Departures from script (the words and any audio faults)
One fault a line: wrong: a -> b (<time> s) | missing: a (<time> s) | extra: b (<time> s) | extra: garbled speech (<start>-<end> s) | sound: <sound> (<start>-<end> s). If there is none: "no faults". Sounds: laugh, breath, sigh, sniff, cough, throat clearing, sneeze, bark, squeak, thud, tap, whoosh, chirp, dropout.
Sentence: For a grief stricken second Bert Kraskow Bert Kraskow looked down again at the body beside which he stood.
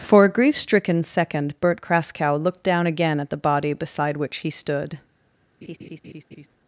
missing: Bert Kraskow (2.4 s)
sound: laugh (5.6-6.5 s)